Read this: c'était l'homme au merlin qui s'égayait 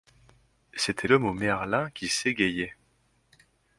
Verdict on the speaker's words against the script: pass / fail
pass